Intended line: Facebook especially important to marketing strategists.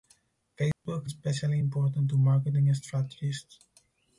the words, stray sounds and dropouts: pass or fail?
fail